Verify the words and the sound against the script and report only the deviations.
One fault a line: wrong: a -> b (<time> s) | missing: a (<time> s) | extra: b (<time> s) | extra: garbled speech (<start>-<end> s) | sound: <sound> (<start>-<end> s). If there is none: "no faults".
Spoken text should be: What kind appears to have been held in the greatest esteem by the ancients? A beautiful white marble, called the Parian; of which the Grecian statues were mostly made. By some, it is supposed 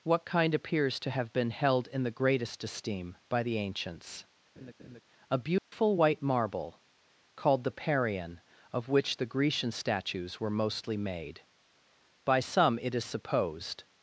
sound: laugh (4.6-5.0 s)
sound: dropout (5.6-5.7 s)